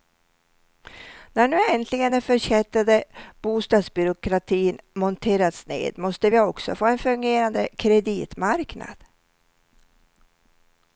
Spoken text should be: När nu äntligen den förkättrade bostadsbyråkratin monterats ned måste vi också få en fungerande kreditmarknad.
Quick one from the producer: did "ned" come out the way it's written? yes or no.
yes